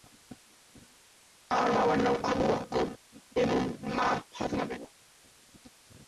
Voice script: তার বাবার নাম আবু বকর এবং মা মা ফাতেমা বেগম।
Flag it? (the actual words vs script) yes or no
yes